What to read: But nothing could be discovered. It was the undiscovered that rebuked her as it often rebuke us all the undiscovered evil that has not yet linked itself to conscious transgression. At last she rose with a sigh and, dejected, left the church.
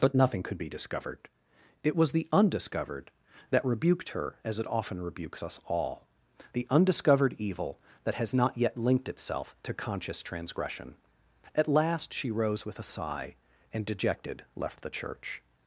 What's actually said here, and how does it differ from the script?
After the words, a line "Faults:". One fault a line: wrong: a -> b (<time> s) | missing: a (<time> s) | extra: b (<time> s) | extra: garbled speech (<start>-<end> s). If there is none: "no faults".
But nothing could be discovered. It was the undiscovered that rebuked her as it often rebukes us all the undiscovered evil that has not yet linked itself to conscious transgression. At last she rose with a sigh and, dejected, left the church.
Faults:
wrong: rebuke -> rebukes (5.0 s)